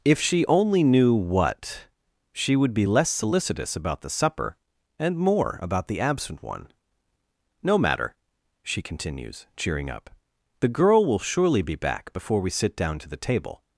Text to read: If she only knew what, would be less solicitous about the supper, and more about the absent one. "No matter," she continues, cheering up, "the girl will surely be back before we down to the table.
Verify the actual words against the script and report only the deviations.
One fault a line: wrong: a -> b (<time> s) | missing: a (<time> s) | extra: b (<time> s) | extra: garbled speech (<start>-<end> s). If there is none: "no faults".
extra: she (2.3 s)
extra: sit (12.5 s)